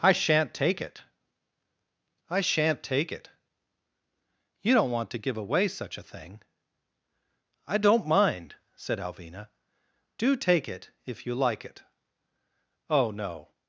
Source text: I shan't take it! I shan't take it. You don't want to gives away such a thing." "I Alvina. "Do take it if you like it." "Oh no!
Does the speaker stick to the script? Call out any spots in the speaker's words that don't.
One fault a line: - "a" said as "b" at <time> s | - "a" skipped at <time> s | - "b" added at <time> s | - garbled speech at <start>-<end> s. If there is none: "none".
- "gives" said as "give" at 5.2 s
- "don't mind said" added at 7.8 s